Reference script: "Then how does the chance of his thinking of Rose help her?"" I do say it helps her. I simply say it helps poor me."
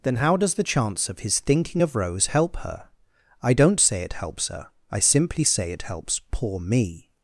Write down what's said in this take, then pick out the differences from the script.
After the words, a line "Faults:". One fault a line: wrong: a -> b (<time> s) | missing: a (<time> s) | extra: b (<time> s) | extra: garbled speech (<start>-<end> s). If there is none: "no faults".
"Then how does the chance of his thinking of Rose help her?"" I don't say it helps her. I simply say it helps poor me."
Faults:
wrong: do -> don't (3.5 s)